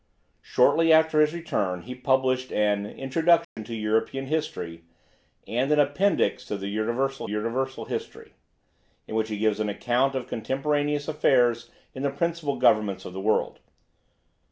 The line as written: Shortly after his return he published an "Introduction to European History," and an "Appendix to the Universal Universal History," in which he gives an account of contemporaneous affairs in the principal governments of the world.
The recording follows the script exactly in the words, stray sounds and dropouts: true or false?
false